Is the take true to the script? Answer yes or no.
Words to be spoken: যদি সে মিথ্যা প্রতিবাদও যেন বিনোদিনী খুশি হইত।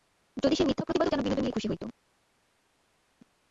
yes